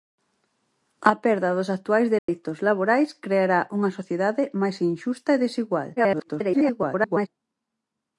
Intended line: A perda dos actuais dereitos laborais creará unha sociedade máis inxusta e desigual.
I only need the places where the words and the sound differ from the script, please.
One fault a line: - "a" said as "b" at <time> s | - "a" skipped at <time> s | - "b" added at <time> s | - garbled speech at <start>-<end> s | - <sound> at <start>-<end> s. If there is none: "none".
- dropout at 2.2-2.3 s
- garbled speech at 6.0-7.3 s